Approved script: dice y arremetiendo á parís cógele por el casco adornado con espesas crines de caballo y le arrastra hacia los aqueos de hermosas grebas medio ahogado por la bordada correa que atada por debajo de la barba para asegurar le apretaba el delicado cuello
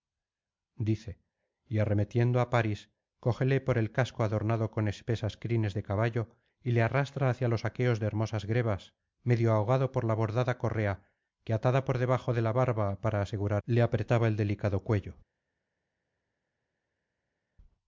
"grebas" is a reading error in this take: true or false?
false